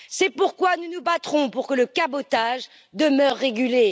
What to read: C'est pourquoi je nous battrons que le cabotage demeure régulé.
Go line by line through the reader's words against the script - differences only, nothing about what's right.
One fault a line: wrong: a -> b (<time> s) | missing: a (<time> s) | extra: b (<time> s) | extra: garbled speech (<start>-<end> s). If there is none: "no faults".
wrong: je -> nous (0.8 s)
extra: pour (1.5 s)